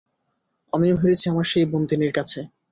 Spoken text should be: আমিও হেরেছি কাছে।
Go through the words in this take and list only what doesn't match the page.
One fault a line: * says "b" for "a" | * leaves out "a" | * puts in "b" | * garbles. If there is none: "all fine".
* puts in "আমার সেই বন্দিনীর"